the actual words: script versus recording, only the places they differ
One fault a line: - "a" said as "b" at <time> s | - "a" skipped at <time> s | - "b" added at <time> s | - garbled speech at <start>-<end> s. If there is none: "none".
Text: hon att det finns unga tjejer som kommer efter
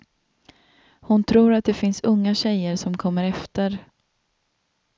- "tror" added at 1.2 s